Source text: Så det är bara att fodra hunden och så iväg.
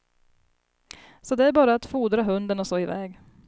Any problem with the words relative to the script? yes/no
no